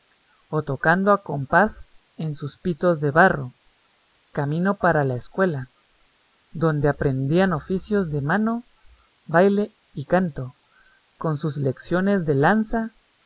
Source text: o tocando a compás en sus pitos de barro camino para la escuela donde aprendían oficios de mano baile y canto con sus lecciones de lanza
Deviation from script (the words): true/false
false